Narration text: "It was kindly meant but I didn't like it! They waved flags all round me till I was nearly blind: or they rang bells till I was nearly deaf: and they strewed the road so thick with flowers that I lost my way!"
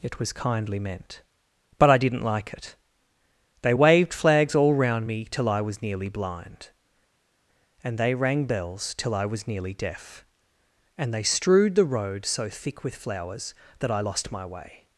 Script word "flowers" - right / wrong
right